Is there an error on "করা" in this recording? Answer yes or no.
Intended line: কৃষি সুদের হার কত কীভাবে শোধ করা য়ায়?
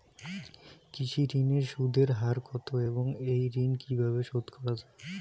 no